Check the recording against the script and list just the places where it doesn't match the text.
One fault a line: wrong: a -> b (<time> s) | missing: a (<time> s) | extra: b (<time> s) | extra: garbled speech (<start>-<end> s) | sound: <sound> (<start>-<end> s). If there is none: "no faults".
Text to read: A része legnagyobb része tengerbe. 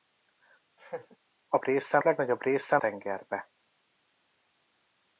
sound: laugh (0.8-1.2 s)